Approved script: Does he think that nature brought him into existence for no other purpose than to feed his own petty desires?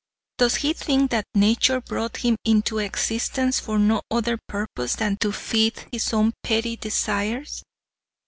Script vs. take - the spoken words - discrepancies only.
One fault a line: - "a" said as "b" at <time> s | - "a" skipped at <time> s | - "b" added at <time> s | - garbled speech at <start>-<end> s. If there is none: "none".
none